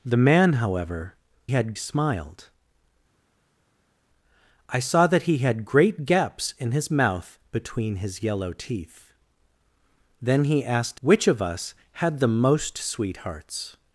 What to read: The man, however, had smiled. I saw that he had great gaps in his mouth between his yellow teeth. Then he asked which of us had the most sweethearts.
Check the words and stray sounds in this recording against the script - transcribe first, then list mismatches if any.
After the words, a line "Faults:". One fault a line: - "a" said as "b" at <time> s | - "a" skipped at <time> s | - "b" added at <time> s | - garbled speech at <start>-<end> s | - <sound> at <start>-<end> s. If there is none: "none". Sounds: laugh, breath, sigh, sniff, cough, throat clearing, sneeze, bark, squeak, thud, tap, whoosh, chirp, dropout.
The man, however, had smiled. I saw that he had great gaps in his mouth between his yellow teeth. Then he asked which of us had the most sweethearts.
Faults:
none